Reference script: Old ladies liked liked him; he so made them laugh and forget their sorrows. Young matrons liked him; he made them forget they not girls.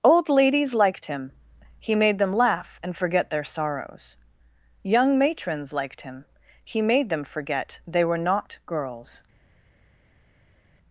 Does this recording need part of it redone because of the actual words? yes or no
yes